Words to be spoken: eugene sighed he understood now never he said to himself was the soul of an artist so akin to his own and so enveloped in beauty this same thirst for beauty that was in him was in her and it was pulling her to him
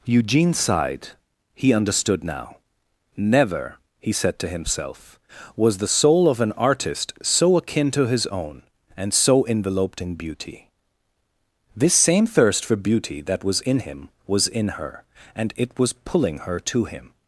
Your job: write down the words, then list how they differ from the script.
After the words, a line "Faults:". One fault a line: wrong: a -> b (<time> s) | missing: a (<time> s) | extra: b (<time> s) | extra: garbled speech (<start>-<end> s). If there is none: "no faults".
eugene sighed he understood now never he said to himself was the soul of an artist so akin to his own and so enveloped in beauty this same thirst for beauty that was in him was in her and it was pulling her to him
Faults:
no faults